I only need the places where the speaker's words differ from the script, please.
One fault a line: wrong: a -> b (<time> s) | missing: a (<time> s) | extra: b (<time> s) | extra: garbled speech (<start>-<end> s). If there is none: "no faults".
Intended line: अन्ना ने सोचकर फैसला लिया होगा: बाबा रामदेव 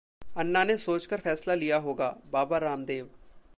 no faults